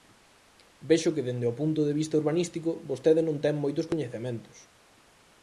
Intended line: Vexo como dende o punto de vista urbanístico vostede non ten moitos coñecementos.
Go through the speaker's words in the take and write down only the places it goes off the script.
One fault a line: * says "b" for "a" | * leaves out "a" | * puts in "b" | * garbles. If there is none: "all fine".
* says "que" for "como"